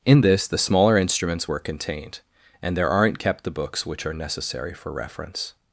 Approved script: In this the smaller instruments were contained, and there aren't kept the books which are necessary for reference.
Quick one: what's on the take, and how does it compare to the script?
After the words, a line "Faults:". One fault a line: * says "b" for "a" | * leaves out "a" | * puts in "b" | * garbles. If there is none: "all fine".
In this the smaller instruments were contained, and there aren't kept the books which are necessary for reference.
Faults:
all fine